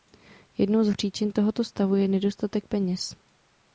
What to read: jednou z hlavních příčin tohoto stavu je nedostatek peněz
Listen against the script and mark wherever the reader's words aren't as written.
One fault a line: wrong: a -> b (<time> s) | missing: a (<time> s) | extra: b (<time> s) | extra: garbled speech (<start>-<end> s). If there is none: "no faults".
missing: hlavních (0.9 s)